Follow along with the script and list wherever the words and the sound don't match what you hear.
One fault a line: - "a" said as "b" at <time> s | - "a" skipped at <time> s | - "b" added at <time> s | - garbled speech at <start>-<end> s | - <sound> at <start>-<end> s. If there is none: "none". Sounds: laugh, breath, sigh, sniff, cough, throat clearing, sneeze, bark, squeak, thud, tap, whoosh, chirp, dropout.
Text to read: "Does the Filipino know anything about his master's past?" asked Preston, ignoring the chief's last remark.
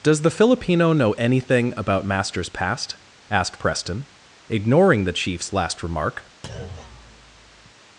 - "his" skipped at 2.1 s
- thud at 6.4-7.7 s